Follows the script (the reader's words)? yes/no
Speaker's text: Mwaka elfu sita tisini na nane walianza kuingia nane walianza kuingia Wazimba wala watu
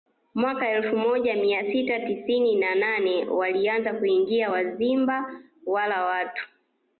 no